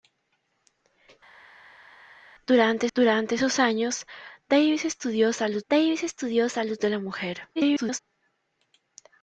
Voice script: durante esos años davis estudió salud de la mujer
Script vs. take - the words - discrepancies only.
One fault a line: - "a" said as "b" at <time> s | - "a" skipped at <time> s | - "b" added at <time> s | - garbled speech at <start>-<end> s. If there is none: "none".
- "durante" added at 2.9 s
- "davis estudió salud" added at 5.7 s
- garbled speech at 7.6-8.0 s